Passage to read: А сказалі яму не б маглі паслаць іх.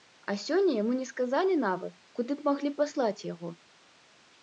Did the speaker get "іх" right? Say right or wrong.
wrong